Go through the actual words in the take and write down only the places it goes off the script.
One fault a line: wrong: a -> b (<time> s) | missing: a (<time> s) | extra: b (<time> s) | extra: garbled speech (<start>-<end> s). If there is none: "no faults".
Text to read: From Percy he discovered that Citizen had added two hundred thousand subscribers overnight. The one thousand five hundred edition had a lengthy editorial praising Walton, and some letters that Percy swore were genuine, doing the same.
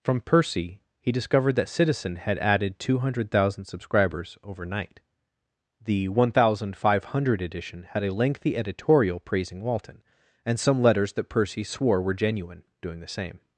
no faults